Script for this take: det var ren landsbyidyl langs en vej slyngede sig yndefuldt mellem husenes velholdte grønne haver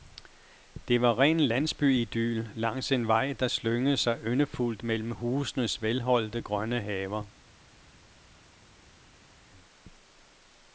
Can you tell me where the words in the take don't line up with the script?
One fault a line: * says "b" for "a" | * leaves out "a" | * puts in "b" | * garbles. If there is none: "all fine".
* puts in "der"